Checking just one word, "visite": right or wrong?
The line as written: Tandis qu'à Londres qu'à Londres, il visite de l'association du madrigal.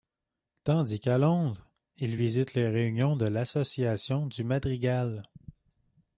wrong